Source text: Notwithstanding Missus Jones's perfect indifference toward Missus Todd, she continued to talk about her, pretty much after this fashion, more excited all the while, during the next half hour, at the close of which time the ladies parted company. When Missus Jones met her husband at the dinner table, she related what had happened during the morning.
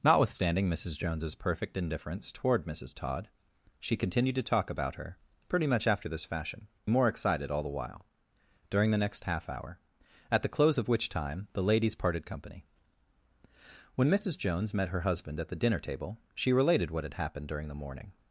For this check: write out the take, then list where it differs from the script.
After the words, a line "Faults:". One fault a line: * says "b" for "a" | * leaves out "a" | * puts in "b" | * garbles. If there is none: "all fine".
Notwithstanding Missus Jones's perfect indifference toward Missus Todd, she continued to talk about her, pretty much after this fashion, more excited all the while, during the next half hour, at the close of which time the ladies parted company. When Missus Jones met her husband at the dinner table, she related what had happened during the morning.
Faults:
all fine